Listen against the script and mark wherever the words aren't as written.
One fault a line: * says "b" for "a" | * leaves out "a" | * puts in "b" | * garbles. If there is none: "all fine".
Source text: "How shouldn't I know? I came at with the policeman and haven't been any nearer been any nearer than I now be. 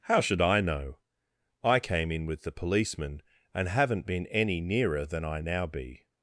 * says "should" for "shouldn't"
* says "in" for "at"
* leaves out "been any nearer"